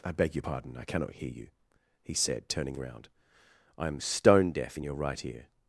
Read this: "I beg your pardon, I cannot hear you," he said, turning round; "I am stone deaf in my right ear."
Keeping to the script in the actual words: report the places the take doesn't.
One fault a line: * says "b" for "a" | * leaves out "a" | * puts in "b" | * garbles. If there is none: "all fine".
* says "your" for "my"